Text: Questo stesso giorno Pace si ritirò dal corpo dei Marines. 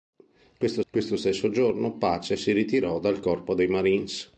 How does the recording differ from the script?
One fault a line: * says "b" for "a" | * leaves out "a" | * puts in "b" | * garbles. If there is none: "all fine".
* puts in "questo"